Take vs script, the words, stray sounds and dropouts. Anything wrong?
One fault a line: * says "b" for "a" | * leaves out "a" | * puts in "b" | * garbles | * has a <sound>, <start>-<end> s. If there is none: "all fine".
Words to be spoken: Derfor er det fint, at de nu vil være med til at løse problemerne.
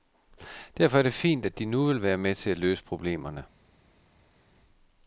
all fine